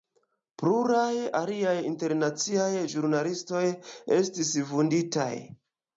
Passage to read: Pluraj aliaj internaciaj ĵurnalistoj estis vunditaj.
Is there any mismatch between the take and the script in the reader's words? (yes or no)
no